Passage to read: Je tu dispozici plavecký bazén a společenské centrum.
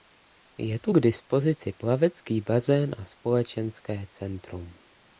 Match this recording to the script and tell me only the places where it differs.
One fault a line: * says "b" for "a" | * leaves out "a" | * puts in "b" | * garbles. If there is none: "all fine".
* puts in "k"